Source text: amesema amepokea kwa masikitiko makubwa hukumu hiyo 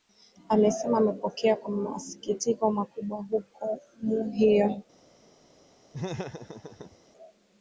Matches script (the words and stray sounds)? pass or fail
fail